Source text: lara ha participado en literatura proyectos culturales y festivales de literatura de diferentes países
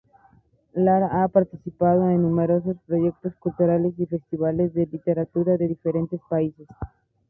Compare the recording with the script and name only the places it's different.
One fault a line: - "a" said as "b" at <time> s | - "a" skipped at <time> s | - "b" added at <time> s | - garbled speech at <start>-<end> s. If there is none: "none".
- "literatura" said as "numerosos" at 2.2 s